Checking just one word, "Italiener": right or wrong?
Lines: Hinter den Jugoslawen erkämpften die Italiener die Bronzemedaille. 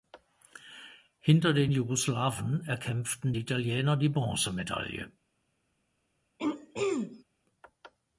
right